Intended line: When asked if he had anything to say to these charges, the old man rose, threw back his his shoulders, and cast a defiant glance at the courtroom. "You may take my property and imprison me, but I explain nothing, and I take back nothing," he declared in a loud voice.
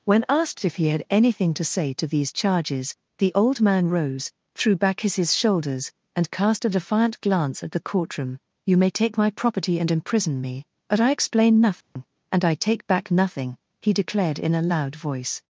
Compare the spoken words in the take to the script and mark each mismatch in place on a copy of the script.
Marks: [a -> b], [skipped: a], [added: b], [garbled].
When asked if he had anything to say to these charges, the old man rose, threw back his his shoulders, and cast a defiant glance at the courtroom. "You may take my property and imprison me, but I explain nothing, and I take back nothing," he declared in a loud voice.